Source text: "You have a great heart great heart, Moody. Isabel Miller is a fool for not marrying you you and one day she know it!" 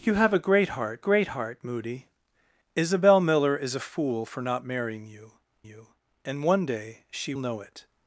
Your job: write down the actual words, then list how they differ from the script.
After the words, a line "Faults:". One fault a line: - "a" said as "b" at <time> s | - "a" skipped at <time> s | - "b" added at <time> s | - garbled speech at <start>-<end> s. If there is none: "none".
"You have a great heart great heart, Moody. Isabel Miller is a fool for not marrying you you and one day she know it!"
Faults:
none